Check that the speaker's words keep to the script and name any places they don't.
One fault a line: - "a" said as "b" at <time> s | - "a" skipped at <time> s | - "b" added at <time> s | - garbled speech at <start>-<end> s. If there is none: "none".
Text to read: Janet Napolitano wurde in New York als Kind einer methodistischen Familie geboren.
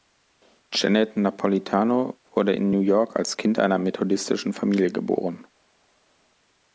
none